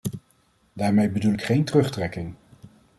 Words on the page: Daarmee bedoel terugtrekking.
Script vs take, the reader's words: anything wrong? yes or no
yes